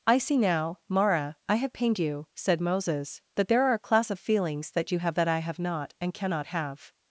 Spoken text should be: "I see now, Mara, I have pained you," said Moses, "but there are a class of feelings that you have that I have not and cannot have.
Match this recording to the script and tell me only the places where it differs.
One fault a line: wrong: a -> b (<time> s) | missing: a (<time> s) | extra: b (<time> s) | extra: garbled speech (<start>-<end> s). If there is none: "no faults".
wrong: but -> that (3.4 s)